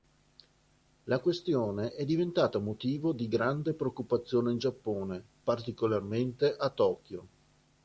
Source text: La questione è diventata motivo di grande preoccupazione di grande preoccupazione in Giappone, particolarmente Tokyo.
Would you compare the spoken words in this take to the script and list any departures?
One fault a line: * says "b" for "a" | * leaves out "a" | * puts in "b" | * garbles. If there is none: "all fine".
* leaves out "di grande preoccupazione"
* puts in "a"